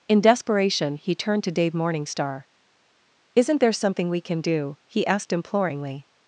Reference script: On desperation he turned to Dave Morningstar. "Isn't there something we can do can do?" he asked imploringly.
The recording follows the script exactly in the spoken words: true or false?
false